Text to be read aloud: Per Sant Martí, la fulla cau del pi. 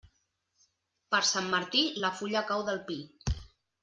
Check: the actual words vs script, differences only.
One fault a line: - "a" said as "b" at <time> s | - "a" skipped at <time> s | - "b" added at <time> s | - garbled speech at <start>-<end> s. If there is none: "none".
none